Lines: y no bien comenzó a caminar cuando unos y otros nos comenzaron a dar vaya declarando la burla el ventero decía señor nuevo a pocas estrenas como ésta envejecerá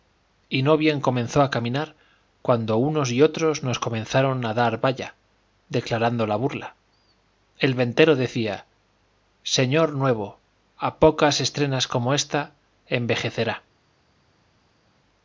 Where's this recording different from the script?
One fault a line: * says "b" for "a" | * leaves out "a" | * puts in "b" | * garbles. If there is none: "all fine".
all fine